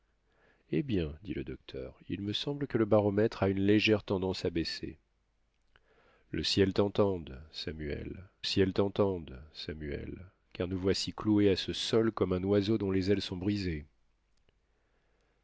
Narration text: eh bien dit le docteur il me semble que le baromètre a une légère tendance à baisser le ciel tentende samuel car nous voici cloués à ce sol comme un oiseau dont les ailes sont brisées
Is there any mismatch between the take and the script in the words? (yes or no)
yes